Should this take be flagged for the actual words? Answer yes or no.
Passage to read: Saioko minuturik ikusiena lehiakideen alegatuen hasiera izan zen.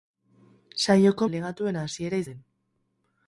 yes